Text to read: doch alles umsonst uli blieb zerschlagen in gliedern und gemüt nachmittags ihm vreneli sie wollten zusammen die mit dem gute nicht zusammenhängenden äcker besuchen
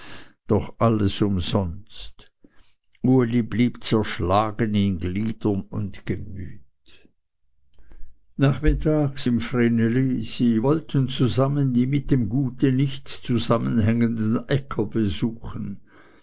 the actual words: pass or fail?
pass